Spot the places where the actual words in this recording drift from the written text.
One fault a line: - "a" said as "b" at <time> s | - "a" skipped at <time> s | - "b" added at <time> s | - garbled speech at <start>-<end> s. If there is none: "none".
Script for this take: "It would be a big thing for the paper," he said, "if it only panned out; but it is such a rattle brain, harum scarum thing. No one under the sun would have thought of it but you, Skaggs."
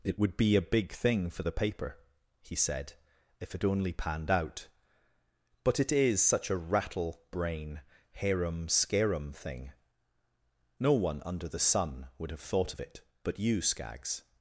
none